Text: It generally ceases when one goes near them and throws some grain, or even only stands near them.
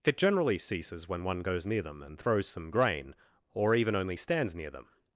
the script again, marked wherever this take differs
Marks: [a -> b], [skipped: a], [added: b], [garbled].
It generally ceases when one goes near them and throws some grain, or even only stands near them.